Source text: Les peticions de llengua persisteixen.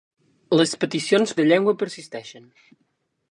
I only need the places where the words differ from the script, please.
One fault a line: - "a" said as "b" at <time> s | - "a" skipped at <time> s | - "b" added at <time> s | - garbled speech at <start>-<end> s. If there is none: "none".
none